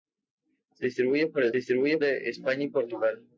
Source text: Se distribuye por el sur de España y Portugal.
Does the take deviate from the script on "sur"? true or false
true